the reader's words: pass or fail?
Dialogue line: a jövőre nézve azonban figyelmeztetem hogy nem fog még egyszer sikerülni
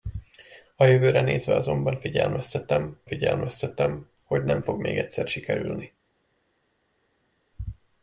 fail